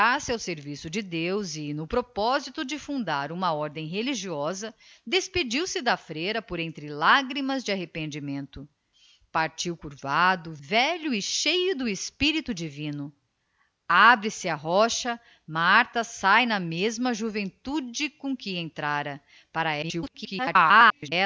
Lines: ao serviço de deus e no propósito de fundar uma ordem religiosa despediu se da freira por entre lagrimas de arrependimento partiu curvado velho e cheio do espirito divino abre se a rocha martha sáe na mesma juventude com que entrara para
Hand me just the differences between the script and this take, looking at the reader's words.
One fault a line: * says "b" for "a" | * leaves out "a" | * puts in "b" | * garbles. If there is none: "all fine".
* garbles